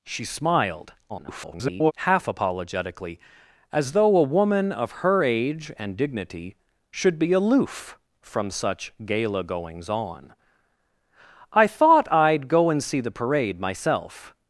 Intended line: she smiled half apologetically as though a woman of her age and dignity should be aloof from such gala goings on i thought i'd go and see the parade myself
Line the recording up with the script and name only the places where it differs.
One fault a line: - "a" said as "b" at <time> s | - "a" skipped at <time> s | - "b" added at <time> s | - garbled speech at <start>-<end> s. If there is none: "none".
- garbled speech at 1.1-1.9 s